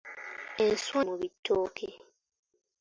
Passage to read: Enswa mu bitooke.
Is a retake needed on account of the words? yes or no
no